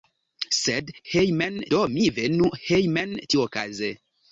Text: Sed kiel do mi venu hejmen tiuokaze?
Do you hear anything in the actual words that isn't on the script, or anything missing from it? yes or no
yes